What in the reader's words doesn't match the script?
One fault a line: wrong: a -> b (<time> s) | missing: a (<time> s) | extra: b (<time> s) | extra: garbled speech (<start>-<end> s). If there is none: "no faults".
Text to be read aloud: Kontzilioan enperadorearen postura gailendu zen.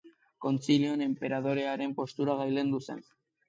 no faults